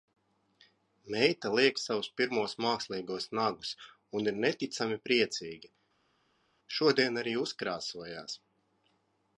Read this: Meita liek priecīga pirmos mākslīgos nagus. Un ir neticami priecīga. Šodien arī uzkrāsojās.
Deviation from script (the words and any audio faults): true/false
true